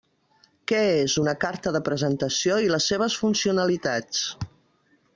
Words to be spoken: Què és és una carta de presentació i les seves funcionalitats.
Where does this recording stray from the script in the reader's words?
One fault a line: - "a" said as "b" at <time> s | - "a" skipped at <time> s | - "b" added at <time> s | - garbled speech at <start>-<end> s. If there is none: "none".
- "és" skipped at 1.2 s